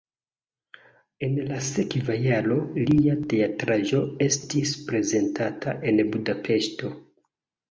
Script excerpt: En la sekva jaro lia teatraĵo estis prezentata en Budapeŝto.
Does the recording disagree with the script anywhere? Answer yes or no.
no